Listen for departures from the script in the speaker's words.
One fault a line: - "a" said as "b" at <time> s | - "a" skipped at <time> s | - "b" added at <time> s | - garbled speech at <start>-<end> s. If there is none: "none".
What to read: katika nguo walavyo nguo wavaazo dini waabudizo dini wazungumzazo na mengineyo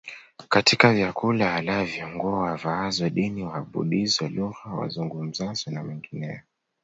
- "nguo" said as "vyakula" at 0.9 s
- "dini" said as "lugha" at 4.3 s